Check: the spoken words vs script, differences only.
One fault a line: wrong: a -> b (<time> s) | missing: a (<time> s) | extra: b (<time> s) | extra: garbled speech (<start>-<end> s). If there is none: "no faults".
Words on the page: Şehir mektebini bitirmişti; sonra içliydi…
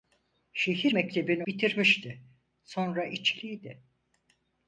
no faults